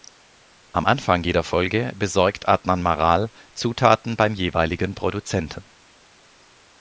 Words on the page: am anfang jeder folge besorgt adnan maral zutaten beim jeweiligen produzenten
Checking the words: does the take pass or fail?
pass